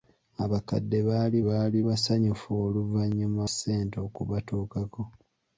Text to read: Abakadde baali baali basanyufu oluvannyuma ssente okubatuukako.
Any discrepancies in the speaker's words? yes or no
no